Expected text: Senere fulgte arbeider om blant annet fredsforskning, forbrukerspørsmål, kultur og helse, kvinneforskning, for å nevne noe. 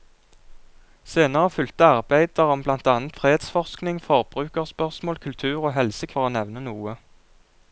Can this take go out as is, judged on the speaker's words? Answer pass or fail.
fail